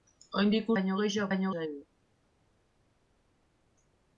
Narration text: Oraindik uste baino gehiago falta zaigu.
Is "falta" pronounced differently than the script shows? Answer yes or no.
yes